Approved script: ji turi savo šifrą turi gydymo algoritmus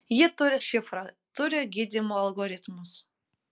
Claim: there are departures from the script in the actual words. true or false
true